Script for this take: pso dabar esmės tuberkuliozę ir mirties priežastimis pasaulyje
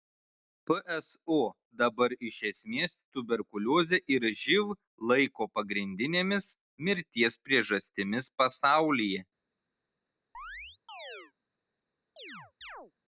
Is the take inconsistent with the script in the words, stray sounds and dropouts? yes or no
yes